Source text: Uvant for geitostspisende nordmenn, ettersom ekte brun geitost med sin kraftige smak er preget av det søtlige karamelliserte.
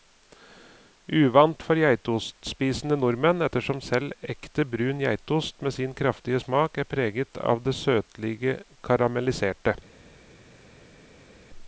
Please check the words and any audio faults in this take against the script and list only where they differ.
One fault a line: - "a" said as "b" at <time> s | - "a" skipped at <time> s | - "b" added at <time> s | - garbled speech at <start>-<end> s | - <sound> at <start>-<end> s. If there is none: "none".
- "selv" added at 3.9 s